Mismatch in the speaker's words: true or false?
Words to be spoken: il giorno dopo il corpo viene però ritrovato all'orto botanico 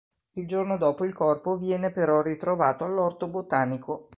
false